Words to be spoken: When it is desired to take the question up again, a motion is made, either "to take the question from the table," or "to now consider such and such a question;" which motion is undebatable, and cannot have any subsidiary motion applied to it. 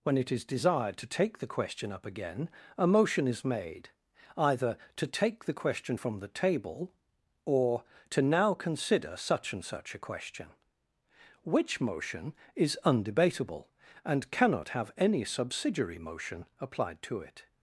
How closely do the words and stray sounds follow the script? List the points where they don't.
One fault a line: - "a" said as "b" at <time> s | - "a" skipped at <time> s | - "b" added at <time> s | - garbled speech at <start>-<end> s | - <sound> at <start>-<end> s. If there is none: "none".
none